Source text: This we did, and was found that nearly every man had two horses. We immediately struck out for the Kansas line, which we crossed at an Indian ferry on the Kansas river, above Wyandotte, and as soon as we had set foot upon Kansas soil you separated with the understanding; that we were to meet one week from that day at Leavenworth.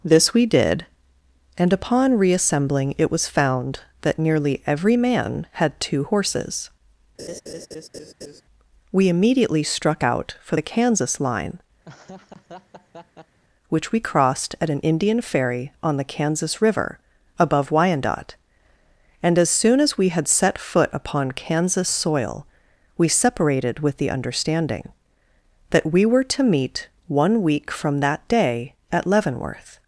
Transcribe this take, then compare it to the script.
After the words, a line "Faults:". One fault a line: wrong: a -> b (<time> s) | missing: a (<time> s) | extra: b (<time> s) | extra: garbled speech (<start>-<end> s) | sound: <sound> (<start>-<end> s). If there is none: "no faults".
This we did, and upon reassembling it was found that nearly every man had two horses. We immediately struck out for the Kansas line, which we crossed at an Indian ferry on the Kansas river, above Wyandotte, and as soon as we had set foot upon Kansas soil we separated with the understanding; that we were to meet one week from that day at Leavenworth.
Faults:
extra: upon reassembling it (1.7 s)
sound: laugh (7.2-8.4 s)
sound: laugh (11.8-13.4 s)
wrong: you -> we (23.0 s)